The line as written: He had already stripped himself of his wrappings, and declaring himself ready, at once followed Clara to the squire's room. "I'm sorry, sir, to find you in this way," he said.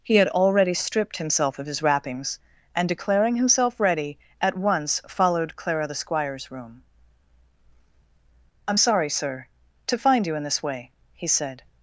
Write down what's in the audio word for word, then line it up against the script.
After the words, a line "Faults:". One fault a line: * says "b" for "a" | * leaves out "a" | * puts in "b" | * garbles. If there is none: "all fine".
He had already stripped himself of his wrappings, and declaring himself ready, at once followed Clara the squire's room. "I'm sorry, sir, to find you in this way," he said.
Faults:
* leaves out "to"